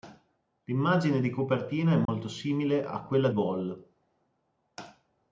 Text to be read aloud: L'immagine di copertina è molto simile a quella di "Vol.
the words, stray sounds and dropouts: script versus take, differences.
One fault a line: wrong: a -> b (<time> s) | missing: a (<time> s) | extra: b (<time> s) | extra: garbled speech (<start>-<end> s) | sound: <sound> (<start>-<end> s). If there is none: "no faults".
sound: dropout (2.0-2.1 s)
missing: di (3.3 s)